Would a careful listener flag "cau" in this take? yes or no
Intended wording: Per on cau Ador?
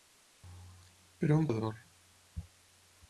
yes